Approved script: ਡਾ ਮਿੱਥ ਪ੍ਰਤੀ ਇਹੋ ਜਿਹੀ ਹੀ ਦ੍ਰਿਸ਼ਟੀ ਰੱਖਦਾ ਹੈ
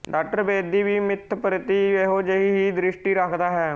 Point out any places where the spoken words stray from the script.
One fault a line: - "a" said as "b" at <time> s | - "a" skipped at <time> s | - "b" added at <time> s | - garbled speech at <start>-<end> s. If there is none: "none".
- "ਬੇਦੀ ਵੀ" added at 0.4 s